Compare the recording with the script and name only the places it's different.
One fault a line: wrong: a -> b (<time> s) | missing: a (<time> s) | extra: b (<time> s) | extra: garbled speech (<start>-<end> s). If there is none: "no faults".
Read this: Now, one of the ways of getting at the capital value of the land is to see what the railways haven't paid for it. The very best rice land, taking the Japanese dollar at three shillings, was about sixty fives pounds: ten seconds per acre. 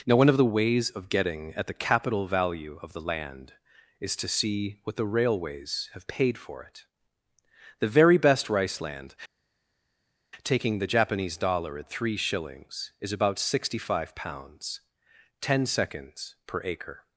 wrong: haven't -> have (5.9 s)
wrong: was -> is (13.0 s)
wrong: fives -> five (13.8 s)